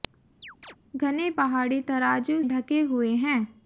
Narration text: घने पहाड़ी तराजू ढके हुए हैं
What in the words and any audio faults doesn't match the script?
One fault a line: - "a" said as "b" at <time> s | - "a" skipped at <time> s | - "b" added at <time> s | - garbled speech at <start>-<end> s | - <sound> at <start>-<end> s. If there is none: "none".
- chirp at 0.4-0.8 s